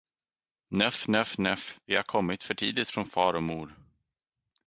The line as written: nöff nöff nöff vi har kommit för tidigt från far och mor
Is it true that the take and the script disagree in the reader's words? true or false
false